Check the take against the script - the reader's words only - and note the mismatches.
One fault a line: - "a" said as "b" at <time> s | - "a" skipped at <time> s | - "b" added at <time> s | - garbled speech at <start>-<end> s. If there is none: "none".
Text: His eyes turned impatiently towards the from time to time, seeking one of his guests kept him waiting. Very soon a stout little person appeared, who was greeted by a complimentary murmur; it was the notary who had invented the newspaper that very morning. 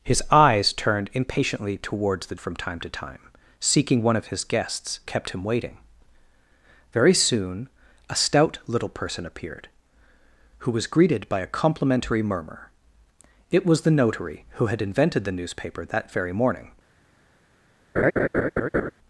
none